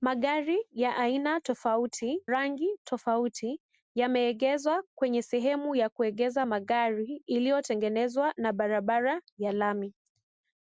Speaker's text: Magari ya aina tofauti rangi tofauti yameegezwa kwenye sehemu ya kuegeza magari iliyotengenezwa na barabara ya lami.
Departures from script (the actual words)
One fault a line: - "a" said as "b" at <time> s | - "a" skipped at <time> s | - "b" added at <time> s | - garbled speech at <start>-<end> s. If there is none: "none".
none